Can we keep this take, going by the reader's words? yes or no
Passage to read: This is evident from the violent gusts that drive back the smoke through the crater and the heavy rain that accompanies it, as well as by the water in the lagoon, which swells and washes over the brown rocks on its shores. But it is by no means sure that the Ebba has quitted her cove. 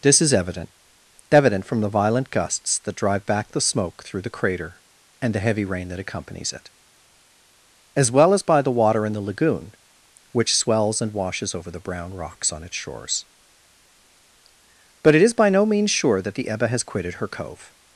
no